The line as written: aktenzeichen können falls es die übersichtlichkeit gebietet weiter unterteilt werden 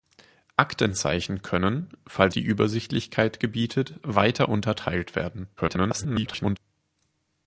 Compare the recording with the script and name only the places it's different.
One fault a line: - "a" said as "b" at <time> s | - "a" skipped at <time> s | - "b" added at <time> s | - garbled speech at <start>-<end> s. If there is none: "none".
- "es" skipped at 2.4 s
- garbled speech at 5.6-6.6 s